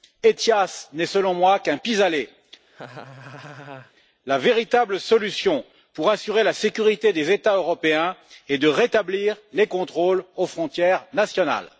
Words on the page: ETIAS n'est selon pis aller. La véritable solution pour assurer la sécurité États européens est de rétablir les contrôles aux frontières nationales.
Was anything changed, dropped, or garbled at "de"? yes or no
no